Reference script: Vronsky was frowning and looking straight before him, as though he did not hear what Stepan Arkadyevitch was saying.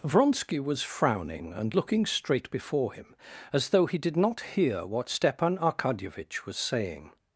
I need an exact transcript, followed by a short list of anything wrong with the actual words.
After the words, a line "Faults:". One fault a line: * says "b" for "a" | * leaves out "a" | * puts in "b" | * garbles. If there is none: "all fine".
Vronsky was frowning and looking straight before him, as though he did not hear what Stepan Arkadyevitch was saying.
Faults:
all fine